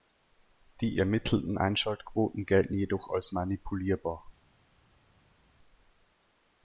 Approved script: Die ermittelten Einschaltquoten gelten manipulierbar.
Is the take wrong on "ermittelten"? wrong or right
right